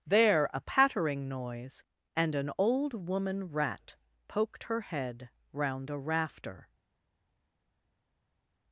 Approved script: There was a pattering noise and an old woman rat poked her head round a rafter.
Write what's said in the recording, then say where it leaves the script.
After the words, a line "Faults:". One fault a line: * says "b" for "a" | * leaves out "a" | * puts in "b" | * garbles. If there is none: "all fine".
There a pattering noise and an old woman rat poked her head round a rafter.
Faults:
* leaves out "was"